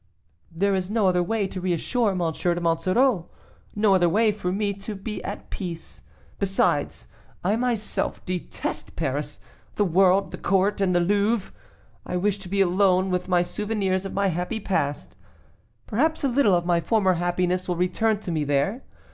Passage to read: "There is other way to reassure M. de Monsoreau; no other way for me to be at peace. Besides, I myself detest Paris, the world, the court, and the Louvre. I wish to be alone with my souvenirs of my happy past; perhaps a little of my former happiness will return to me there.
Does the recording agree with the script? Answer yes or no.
no